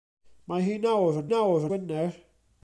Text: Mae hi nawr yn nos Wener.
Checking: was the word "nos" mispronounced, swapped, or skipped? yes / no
yes